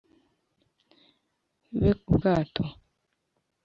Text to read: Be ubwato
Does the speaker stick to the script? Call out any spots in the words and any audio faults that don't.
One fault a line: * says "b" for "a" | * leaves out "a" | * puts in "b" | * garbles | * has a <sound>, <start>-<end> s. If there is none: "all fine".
all fine